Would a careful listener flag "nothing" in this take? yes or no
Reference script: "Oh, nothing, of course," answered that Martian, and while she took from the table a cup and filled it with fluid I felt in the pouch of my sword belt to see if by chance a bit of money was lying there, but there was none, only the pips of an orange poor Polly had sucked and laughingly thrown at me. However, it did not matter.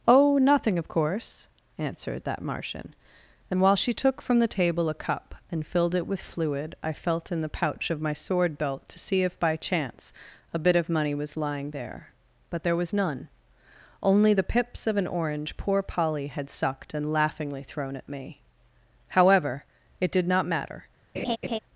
no